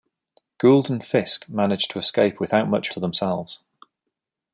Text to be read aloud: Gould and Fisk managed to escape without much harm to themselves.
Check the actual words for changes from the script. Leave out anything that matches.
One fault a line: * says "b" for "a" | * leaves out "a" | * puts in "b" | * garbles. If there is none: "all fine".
* leaves out "harm"